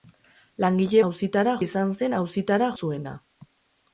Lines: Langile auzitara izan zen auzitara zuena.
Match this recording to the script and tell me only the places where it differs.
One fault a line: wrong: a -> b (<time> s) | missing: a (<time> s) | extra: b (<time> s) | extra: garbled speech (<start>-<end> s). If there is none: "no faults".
no faults